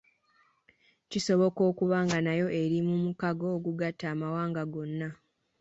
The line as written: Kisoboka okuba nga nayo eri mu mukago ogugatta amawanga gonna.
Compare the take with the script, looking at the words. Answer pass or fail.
pass